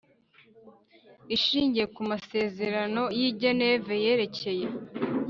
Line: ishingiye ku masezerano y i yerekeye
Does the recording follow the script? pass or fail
fail